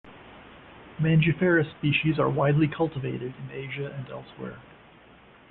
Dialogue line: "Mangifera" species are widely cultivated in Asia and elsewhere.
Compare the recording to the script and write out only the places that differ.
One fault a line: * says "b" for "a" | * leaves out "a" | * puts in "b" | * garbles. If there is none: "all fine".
all fine